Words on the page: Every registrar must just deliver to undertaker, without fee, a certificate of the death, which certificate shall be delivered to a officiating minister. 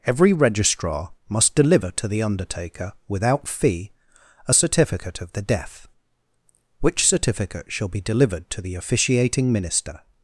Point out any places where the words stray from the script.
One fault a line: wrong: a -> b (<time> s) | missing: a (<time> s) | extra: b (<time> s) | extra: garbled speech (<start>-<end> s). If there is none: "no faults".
missing: just (1.5 s)
extra: the (2.1 s)
wrong: a -> the (8.6 s)